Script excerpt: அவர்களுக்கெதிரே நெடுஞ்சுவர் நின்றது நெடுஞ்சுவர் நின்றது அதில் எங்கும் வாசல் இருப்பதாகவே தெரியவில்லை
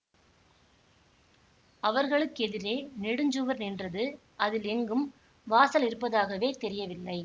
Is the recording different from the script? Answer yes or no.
yes